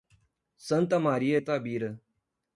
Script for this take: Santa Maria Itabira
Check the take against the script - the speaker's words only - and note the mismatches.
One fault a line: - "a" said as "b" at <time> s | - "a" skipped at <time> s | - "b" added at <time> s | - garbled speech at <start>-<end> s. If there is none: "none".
none